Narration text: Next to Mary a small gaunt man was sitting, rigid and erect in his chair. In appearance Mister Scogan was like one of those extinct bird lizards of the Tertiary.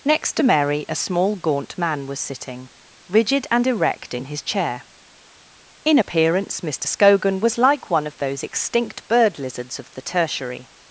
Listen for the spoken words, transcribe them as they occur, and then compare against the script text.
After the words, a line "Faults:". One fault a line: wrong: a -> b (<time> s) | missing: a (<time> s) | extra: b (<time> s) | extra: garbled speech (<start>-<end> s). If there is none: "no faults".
Next to Mary a small gaunt man was sitting, rigid and erect in his chair. In appearance Mister Scogan was like one of those extinct bird lizards of the Tertiary.
Faults:
no faults